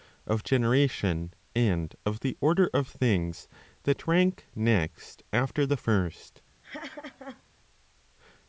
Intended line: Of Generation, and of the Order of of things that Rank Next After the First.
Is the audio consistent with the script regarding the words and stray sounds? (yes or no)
no